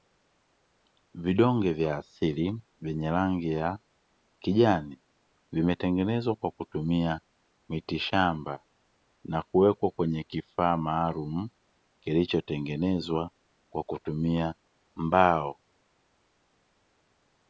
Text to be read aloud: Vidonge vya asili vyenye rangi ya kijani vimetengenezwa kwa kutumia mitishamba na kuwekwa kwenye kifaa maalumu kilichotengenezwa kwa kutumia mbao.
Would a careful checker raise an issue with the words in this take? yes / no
no